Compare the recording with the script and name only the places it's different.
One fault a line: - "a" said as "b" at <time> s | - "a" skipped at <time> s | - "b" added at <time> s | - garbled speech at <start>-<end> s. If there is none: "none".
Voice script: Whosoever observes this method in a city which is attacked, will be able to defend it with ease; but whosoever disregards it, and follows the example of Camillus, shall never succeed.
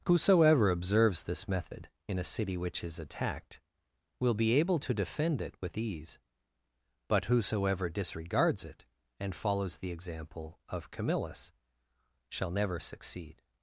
none